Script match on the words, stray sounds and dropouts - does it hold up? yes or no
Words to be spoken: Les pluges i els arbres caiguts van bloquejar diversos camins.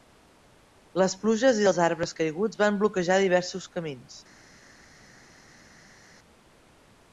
yes